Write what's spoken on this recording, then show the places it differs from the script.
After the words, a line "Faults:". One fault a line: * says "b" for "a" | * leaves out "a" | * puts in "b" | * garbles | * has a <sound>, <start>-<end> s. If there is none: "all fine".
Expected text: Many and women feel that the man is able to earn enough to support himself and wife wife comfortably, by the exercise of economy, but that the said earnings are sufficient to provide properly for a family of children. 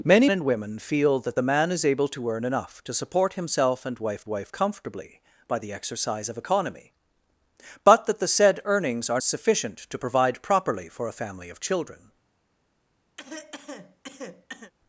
Many and women feel that the man is able to earn enough to support himself and wife wife comfortably, by the exercise of economy, but that the said earnings are sufficient to provide properly for a family of children.
Faults:
* has a cough, 13.2-14.7 s